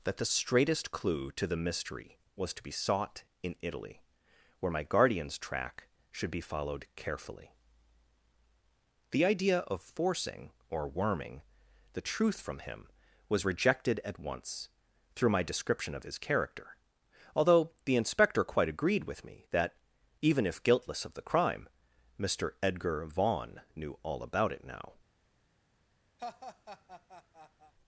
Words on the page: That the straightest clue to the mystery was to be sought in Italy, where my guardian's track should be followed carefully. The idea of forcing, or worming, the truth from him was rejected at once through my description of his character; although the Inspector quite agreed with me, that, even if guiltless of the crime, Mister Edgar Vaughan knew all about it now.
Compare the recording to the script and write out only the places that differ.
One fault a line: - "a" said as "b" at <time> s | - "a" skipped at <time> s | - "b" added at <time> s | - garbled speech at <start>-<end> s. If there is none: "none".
none